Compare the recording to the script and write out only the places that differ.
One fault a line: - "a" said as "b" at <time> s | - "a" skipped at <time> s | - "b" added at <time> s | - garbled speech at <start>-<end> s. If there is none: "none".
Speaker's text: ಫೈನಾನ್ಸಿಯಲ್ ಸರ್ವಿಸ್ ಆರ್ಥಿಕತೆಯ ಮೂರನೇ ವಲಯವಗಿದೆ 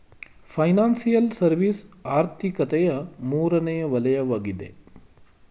none